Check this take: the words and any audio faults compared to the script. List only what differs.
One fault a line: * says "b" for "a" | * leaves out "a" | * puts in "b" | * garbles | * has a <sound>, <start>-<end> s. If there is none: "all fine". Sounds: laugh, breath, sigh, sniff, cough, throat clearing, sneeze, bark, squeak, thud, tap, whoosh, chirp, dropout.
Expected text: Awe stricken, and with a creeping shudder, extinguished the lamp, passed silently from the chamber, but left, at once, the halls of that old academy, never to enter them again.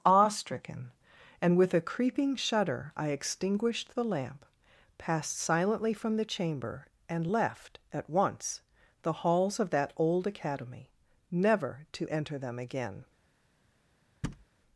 * puts in "I"
* says "and" for "but"
* has a thud, 14.2-14.5 s